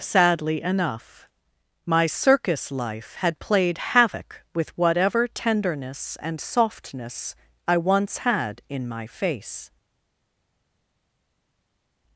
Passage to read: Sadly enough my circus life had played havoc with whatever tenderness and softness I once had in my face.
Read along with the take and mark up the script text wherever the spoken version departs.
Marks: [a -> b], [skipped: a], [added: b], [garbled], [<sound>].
Sadly enough my circus life had played havoc with whatever tenderness and softness I once had in my face.